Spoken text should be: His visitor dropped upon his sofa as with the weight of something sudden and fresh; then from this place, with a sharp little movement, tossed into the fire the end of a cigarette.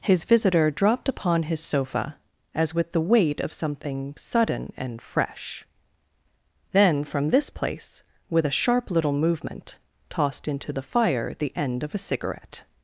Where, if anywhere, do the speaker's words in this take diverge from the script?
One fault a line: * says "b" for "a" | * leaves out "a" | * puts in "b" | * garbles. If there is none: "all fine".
all fine